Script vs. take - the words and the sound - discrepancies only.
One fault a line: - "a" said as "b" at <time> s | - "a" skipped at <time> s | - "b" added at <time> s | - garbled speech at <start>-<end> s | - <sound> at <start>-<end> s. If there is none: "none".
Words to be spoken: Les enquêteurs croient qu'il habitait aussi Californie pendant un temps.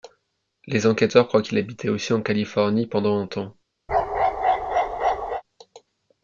- "en" added at 2.1 s
- bark at 3.9-5.4 s